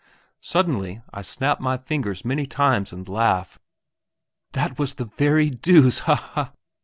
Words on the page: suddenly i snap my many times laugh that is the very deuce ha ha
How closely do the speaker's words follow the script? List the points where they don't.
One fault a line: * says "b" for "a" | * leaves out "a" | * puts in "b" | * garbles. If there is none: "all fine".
* puts in "fingers"
* puts in "and"
* says "was" for "is"